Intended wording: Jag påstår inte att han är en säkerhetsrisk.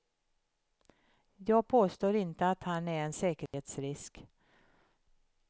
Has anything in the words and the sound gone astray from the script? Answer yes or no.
yes